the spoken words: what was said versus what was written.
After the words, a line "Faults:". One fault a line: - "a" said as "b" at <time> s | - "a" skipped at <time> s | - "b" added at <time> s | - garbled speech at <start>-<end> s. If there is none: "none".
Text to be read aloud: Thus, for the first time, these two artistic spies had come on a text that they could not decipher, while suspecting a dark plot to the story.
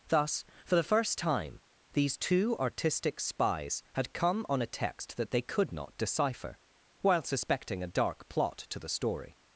Thus, for the first time, these two artistic spies had come on a text that they could not decipher, while suspecting a dark plot to the story.
Faults:
none